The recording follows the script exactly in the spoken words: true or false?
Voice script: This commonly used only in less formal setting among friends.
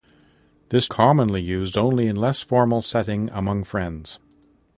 true